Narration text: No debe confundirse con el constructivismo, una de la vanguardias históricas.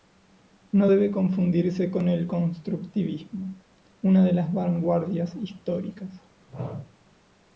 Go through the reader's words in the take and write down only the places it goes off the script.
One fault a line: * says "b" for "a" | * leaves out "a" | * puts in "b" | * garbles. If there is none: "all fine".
* says "las" for "la"